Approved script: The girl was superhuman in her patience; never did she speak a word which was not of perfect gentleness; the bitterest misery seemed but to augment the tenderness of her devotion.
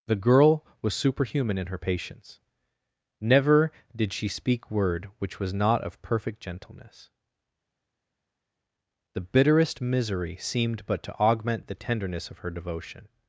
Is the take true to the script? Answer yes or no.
no